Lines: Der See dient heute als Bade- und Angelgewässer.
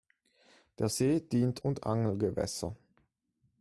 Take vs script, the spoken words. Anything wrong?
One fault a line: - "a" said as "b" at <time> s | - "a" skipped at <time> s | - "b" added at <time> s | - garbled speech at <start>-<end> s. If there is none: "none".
- "heute als Bade" skipped at 1.6 s